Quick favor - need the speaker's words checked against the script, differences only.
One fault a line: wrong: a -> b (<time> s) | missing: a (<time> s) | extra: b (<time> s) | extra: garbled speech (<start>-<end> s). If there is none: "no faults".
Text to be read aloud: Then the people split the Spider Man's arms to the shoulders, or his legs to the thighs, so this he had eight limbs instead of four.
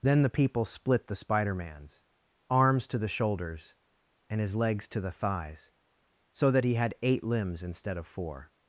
wrong: or -> and (4.3 s)
wrong: this -> that (6.5 s)